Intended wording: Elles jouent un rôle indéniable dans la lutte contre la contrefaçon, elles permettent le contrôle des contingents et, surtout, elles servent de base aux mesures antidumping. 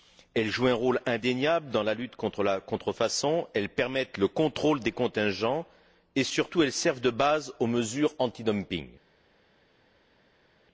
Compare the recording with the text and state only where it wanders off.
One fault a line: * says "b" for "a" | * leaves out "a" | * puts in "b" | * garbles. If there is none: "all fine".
all fine